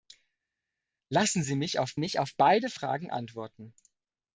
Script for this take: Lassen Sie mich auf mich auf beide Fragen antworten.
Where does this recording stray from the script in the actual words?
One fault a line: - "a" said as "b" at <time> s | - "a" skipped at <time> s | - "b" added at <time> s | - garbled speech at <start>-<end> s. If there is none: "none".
none